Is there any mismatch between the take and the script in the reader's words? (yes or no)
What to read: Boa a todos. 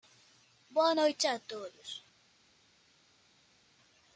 yes